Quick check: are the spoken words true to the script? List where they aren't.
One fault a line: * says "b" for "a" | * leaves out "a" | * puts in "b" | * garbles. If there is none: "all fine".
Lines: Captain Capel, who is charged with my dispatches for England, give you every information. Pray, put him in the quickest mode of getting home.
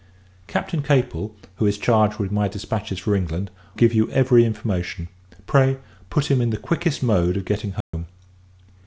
all fine